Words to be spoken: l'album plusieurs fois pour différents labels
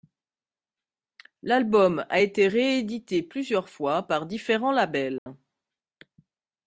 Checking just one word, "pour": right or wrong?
wrong